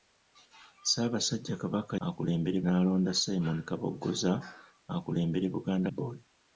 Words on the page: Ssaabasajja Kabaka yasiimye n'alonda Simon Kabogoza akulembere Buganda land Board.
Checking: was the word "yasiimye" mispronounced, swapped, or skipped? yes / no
yes